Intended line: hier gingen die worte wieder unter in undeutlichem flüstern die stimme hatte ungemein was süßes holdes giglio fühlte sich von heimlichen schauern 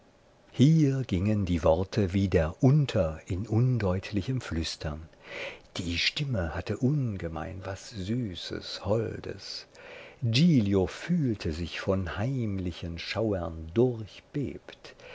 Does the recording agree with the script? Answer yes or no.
yes